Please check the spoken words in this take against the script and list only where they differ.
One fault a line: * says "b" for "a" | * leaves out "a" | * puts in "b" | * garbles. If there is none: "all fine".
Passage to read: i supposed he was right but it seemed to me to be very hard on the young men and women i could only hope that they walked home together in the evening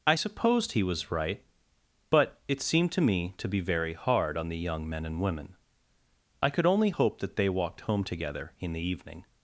all fine